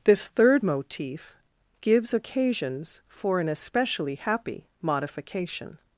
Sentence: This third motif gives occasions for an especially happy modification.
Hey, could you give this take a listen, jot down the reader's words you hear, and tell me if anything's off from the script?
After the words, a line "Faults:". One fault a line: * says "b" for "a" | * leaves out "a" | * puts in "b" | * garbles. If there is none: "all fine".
This third motif gives occasions for an especially happy modification.
Faults:
all fine